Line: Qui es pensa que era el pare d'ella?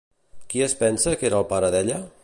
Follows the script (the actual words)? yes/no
yes